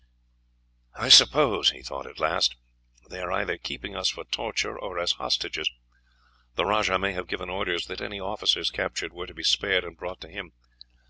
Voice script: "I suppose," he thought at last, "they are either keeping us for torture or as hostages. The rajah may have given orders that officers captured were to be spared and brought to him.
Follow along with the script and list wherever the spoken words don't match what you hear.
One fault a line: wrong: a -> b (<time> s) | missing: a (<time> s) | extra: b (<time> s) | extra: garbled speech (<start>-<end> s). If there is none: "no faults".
extra: any (8.0 s)